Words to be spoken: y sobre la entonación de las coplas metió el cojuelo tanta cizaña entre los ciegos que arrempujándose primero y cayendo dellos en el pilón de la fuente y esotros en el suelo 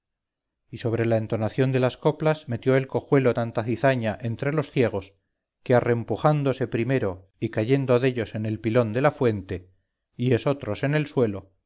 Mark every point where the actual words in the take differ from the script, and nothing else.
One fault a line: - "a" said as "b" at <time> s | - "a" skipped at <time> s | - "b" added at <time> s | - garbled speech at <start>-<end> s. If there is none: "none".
none